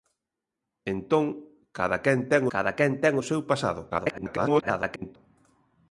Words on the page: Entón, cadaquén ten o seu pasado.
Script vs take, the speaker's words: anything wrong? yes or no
yes